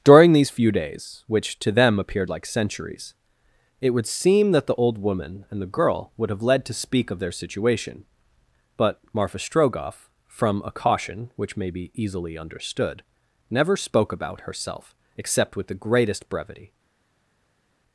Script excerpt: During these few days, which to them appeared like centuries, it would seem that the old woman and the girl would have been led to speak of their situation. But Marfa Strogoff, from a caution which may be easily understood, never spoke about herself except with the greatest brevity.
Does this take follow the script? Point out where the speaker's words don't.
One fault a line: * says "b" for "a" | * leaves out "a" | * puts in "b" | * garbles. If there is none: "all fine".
* leaves out "been"